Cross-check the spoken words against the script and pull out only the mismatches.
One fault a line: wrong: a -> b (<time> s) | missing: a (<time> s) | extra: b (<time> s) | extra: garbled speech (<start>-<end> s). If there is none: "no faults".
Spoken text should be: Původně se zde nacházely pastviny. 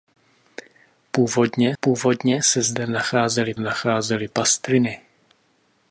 extra: původně (1.8 s)
extra: nacházely (3.6 s)